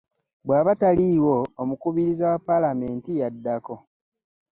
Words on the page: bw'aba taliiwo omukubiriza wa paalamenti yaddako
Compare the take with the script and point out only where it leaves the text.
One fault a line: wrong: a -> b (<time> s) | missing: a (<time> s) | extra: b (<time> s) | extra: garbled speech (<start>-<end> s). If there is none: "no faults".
no faults